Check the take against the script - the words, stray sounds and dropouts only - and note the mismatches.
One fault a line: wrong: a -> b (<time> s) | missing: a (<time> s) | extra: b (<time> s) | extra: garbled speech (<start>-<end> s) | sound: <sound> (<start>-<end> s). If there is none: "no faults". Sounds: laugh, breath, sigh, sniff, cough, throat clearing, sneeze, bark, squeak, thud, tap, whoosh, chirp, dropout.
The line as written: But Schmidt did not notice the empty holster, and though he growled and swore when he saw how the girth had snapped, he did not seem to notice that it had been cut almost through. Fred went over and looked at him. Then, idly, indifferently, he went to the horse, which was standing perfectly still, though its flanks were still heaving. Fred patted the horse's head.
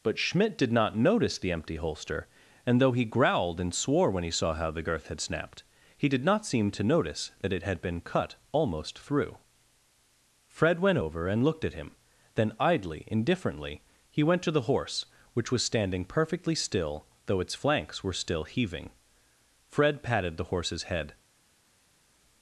no faults